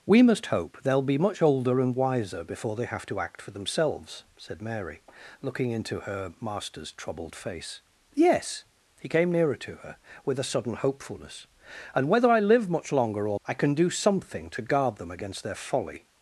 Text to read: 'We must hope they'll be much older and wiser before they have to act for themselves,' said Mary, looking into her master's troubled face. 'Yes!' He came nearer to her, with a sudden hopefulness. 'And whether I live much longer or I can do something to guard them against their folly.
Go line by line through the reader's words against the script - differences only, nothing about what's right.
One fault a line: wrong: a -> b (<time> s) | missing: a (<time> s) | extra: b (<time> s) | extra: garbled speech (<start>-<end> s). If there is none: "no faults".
no faults